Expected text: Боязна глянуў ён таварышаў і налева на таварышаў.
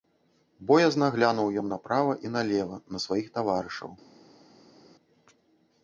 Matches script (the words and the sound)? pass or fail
fail